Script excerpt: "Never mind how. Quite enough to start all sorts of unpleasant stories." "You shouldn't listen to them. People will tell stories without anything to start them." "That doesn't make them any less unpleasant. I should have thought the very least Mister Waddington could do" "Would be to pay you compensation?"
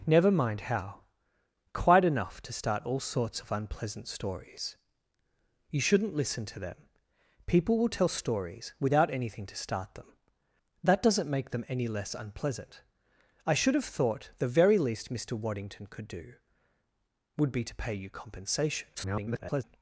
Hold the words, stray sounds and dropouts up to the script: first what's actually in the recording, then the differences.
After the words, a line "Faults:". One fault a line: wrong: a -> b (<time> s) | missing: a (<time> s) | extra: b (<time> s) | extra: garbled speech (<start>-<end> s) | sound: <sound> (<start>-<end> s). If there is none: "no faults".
"Never mind how. Quite enough to start all sorts of unpleasant stories." "You shouldn't listen to them. People will tell stories without anything to start them." "That doesn't make them any less unpleasant. I should have thought the very least Mister Waddington could do" "Would be to pay you compensation?" [garbled]
Faults:
extra: garbled speech (18.9-19.6 s)